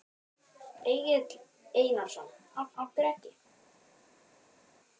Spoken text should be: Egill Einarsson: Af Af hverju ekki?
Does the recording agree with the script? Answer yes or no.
yes